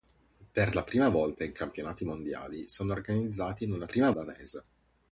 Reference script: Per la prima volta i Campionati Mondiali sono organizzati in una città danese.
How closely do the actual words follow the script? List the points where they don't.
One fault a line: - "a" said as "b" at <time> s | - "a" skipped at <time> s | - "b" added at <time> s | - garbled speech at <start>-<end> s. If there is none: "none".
- "città" said as "prima" at 3.8 s